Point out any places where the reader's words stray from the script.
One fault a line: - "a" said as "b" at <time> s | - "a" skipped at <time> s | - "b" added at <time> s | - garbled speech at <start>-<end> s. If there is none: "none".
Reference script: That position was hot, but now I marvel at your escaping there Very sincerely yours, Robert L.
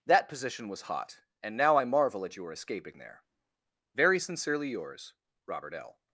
- "but" said as "and" at 1.4 s